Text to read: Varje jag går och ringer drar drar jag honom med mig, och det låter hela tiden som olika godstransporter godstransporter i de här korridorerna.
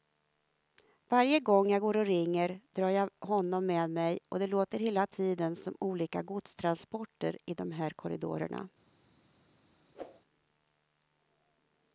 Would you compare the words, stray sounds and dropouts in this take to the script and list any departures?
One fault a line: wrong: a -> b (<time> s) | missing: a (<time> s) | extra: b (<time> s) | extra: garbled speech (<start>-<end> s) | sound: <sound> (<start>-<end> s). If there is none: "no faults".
extra: gång (1.4 s)
missing: drar (2.9 s)
missing: godstransporter (7.4 s)
sound: whoosh (9.9-10.2 s)